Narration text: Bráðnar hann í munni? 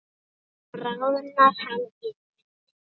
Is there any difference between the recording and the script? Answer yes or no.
no